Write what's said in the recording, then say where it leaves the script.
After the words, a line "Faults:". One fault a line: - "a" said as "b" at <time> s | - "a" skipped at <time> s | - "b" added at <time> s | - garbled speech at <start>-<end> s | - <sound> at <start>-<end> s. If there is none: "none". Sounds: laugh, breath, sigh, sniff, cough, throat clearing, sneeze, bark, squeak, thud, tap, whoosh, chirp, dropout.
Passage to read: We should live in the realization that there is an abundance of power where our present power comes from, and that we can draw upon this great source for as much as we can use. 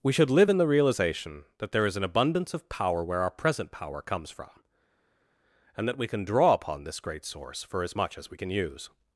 We should live in the realization that there is an abundance of power where our present power comes from, and that we can draw upon this great source for as much as we can use.
Faults:
none